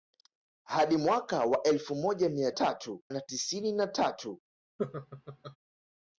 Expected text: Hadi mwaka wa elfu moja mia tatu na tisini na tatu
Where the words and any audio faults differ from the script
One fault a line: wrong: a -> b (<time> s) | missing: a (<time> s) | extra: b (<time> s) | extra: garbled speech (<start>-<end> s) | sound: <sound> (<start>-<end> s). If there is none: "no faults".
sound: laugh (4.8-5.6 s)